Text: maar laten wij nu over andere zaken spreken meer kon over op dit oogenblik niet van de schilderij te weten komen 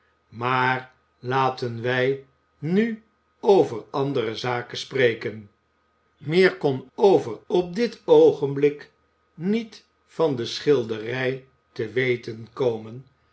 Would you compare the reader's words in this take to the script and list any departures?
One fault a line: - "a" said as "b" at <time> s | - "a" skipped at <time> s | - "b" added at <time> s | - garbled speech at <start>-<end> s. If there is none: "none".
none